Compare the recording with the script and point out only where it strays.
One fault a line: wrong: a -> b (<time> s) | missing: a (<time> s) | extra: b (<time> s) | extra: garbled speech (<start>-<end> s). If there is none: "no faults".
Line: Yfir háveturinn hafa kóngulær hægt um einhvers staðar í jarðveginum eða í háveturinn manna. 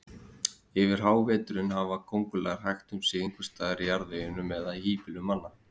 extra: sig (3.1 s)
wrong: háveturinn -> híbýlum (4.9 s)